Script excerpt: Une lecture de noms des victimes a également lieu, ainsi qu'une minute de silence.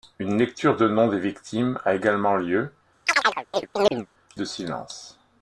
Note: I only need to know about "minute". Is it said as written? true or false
false